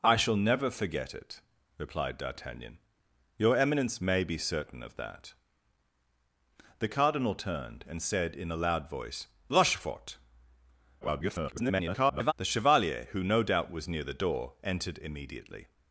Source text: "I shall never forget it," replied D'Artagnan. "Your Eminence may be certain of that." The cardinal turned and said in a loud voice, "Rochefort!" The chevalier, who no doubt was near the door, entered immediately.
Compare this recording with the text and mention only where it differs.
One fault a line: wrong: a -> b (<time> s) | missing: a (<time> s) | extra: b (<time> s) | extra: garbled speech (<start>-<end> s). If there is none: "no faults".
extra: garbled speech (11.0-12.3 s)